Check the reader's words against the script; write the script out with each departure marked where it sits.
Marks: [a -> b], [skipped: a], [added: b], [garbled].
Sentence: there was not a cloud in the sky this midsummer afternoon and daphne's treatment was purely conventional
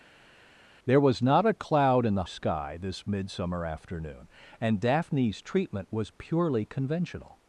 there was not a cloud in the sky this midsummer afternoon and daphne's treatment was purely conventional